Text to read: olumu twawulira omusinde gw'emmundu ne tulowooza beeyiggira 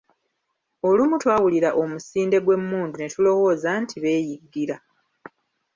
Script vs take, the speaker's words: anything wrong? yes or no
yes